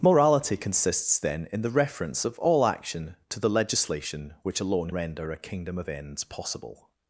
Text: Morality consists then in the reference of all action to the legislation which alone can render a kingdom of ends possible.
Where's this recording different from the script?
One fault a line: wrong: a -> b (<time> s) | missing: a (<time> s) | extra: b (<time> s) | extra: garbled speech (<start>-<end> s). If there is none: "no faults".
missing: can (4.9 s)